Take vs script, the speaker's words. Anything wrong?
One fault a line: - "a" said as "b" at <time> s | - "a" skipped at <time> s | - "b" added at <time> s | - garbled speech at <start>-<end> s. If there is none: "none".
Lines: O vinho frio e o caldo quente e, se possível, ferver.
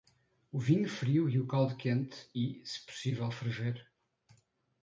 none